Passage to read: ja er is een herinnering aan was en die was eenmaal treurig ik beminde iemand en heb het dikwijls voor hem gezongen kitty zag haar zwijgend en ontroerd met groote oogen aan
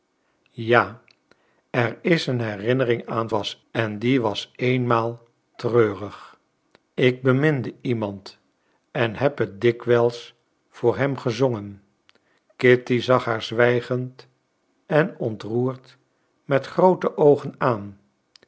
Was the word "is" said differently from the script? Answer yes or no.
no